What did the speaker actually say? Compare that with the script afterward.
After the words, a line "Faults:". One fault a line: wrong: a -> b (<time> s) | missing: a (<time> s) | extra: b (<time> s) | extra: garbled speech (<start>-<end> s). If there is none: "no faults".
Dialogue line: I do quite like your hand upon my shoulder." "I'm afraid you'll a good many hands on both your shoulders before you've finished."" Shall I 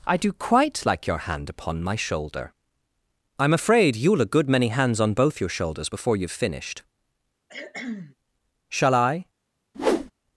I do quite like your hand upon my shoulder." "I'm afraid you'll a good many hands on both your shoulders before you've finished."" Shall I
Faults:
no faults